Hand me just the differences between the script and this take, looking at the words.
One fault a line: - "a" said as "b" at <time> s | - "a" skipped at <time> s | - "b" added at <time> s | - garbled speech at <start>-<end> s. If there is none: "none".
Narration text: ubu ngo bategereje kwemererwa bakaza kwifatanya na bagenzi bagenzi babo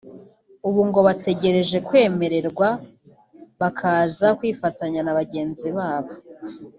- "bagenzi" skipped at 5.7 s